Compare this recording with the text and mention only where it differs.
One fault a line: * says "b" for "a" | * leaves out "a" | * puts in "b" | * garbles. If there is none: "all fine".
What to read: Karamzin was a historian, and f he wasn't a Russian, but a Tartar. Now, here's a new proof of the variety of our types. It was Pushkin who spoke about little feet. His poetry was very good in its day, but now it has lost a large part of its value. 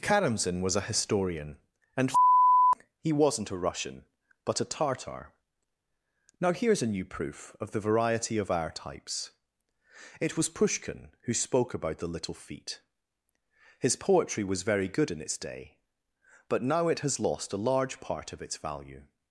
* puts in "the"